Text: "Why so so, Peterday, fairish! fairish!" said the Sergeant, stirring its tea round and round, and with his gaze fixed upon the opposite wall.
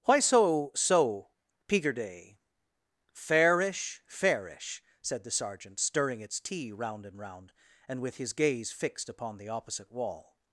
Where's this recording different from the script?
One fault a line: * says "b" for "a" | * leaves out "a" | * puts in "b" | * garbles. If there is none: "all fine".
all fine